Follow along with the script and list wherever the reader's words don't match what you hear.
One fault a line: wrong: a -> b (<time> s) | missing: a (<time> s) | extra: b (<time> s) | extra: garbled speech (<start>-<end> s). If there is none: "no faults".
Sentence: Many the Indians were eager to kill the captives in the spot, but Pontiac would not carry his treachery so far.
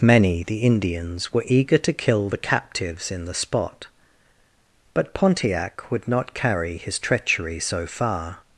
no faults